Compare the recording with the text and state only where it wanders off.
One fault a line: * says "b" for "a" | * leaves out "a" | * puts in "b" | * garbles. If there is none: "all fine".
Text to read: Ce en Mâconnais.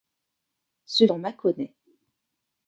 all fine